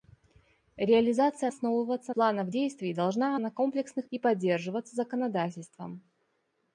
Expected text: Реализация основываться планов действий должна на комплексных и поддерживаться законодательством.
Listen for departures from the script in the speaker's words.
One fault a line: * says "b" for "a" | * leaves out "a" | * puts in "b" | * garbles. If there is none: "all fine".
all fine